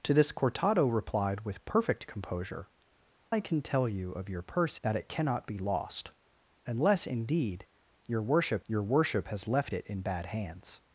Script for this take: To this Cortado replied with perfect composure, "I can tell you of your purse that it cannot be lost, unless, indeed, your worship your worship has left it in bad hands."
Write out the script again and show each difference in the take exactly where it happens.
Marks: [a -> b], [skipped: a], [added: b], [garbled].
To this Cortado replied with perfect composure, "I can tell you of your purse that it cannot be lost, unless, indeed, your worship your worship has left it in bad hands."